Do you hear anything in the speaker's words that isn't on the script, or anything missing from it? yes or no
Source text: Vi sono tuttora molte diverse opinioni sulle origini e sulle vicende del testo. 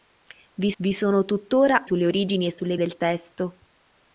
yes